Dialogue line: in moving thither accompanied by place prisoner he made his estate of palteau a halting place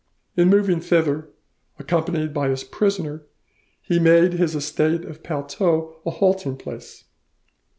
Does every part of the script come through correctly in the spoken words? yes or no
no